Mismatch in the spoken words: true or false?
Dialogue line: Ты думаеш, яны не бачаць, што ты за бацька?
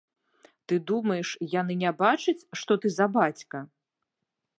false